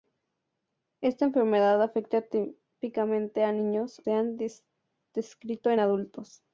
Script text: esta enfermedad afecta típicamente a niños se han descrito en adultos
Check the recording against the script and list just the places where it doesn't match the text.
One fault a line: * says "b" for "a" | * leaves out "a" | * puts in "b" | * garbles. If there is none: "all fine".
all fine